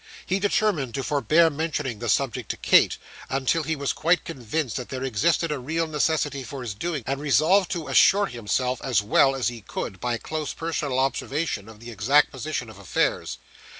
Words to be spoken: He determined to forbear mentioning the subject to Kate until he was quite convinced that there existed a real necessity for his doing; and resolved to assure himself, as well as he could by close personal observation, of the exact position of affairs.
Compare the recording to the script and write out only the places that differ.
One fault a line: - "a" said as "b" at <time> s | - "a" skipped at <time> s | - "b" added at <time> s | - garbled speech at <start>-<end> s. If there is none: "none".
none